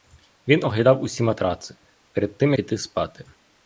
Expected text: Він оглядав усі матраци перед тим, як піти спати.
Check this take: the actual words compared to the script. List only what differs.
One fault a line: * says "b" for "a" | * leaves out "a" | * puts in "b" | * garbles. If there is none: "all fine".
* leaves out "як"